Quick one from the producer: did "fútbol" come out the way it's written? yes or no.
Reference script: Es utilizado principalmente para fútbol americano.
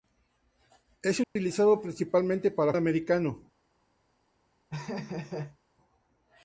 no